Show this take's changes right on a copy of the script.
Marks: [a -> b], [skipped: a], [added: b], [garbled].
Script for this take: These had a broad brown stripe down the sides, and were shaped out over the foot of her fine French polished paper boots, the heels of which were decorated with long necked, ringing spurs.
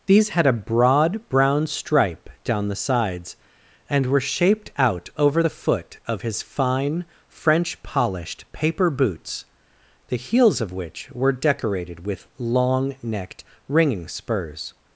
These had a broad brown stripe down the sides, and were shaped out over the foot of [her -> his] fine French polished paper boots, the heels of which were decorated with long necked, ringing spurs.